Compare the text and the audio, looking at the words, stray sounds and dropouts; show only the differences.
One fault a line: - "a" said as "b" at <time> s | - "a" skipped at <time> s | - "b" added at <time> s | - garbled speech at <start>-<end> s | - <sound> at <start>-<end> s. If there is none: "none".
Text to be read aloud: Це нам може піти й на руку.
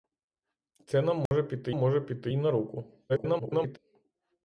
- dropout at 1.3-1.3 s
- "може піти" added at 1.7 s
- garbled speech at 3.1-3.8 s